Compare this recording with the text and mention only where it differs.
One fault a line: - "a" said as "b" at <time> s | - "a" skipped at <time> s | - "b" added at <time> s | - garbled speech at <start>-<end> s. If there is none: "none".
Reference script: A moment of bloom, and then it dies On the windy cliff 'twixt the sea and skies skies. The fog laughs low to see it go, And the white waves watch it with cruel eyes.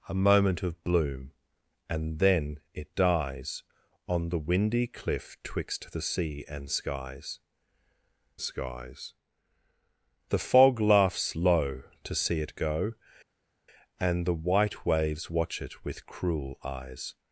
none